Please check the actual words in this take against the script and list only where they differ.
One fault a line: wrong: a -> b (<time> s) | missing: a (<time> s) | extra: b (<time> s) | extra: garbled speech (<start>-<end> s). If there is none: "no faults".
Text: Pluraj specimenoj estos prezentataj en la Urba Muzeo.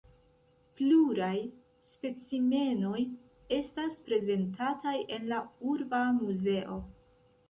wrong: estos -> estas (3.6 s)